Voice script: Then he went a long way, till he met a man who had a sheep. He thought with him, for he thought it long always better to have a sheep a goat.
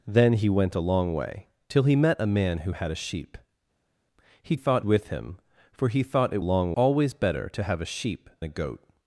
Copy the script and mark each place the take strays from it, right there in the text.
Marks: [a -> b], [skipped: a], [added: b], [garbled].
Then he went a long way, till he met a man who had a sheep. He thought with him, for he thought it long always better to have a sheep a goat.